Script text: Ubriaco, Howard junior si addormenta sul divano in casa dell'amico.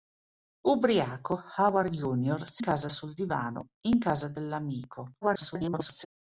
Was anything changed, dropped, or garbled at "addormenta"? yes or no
yes